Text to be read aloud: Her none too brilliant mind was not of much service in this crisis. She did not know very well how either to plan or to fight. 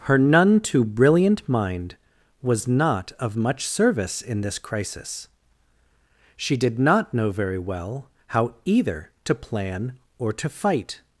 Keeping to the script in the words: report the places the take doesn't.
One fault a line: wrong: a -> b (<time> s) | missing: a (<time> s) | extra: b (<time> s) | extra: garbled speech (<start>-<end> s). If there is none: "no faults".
no faults